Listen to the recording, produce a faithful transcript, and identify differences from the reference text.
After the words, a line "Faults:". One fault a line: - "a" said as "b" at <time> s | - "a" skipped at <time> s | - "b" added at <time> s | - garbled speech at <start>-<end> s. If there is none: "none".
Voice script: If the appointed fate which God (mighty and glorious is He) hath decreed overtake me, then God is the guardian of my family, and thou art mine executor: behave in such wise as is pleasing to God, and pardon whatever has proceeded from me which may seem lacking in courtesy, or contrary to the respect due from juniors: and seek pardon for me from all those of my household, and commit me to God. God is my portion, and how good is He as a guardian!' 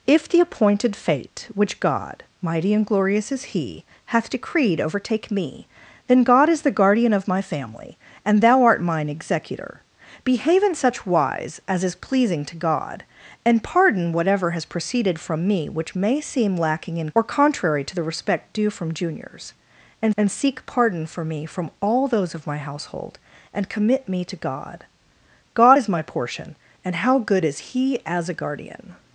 If the appointed fate which God (mighty and glorious is He) hath decreed overtake me, then God is the guardian of my family, and thou art mine executor: behave in such wise as is pleasing to God, and pardon whatever has proceeded from me which may seem lacking in or contrary to the respect due from juniors: and and seek pardon for me from all those of my household, and commit me to God. God is my portion, and how good is He as a guardian!'
Faults:
- "courtesy" skipped at 17.1 s
- "and" added at 20.2 s